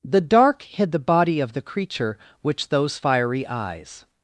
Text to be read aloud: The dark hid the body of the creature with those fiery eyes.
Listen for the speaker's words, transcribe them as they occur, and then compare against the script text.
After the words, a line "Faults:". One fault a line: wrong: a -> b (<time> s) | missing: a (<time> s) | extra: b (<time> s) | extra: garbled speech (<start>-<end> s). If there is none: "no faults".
The dark hid the body of the creature which those fiery eyes.
Faults:
wrong: with -> which (2.4 s)